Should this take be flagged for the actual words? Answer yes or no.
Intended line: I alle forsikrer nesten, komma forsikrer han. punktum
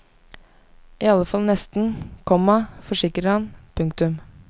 yes